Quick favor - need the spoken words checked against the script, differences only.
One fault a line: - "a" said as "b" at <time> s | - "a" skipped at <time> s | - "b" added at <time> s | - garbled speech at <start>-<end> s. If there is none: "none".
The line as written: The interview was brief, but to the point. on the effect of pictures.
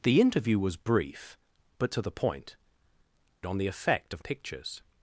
none